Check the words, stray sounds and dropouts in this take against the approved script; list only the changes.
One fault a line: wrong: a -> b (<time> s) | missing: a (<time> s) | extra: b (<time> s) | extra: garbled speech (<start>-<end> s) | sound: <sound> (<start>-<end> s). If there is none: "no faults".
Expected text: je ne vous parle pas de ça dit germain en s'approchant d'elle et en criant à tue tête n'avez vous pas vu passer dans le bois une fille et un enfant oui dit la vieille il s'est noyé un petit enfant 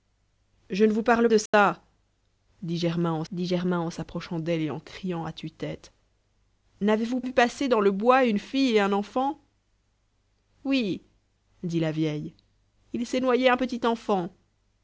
missing: pas (1.3 s)
sound: dropout (1.5-1.5 s)
extra: dit germain en (3.3 s)
missing: pas (7.2 s)